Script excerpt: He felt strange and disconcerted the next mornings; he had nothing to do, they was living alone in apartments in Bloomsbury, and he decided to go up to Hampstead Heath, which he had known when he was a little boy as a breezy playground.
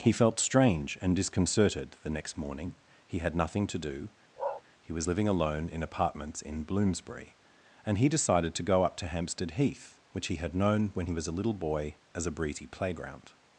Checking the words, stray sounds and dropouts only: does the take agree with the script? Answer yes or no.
no